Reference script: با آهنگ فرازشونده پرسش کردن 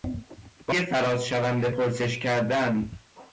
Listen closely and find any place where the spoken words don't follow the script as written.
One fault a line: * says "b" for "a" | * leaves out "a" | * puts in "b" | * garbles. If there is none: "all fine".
* leaves out "آهنگ"